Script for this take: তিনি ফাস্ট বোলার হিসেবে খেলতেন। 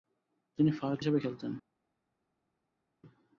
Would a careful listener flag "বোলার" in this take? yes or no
yes